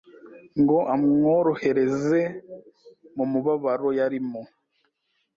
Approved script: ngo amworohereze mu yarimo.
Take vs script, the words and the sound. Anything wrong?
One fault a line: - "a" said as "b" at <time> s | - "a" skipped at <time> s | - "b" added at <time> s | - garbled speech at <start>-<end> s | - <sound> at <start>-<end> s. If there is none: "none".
- "mubabaro" added at 3.3 s